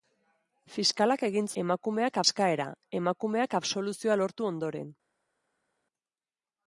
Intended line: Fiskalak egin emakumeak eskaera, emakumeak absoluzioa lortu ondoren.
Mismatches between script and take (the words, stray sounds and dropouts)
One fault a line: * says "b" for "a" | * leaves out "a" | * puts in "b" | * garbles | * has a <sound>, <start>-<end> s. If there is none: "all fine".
all fine